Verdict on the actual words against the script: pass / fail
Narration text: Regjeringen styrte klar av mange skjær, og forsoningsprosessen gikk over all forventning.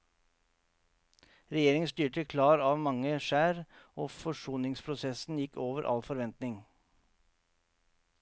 pass